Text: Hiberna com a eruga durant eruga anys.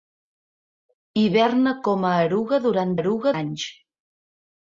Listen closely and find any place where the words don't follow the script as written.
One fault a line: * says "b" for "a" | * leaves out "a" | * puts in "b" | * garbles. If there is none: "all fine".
all fine